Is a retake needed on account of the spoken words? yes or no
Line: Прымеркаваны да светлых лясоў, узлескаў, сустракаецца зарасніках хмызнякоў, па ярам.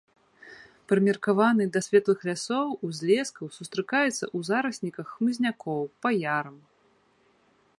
yes